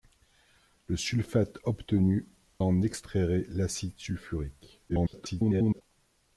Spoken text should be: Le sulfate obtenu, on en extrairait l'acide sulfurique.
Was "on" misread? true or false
true